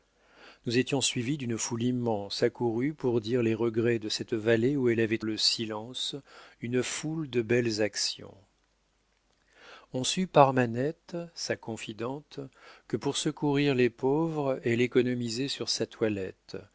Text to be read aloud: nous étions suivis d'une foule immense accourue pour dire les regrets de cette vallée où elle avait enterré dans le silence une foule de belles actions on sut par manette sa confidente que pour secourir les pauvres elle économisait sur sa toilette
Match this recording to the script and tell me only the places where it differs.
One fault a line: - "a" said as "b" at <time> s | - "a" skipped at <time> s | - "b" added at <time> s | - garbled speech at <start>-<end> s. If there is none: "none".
- "enterré dans" skipped at 5.2 s